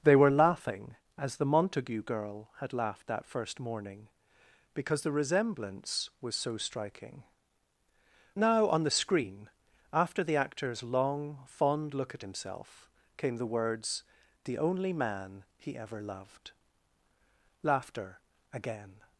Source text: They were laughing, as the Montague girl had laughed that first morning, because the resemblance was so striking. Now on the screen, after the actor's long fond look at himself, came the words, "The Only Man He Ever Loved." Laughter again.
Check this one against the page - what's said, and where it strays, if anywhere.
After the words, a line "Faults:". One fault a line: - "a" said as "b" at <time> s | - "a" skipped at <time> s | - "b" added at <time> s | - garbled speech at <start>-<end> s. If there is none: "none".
They were laughing, as the Montague girl had laughed that first morning, because the resemblance was so striking. Now on the screen, after the actor's long fond look at himself, came the words, "The Only Man He Ever Loved." Laughter again.
Faults:
none